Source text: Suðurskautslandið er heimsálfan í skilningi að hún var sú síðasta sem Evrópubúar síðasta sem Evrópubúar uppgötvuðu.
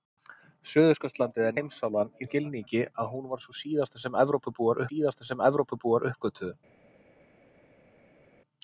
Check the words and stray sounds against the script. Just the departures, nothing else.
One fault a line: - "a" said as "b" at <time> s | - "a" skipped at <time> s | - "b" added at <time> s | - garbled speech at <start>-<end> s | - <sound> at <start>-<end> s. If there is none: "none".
none